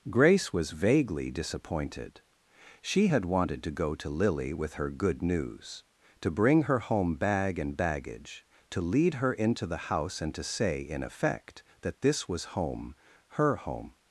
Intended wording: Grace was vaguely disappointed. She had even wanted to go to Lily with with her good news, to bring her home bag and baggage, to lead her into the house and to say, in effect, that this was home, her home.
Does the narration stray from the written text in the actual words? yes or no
yes